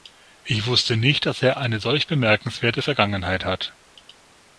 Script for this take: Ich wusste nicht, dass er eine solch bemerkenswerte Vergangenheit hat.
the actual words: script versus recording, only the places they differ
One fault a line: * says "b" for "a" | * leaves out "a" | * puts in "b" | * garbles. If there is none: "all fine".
all fine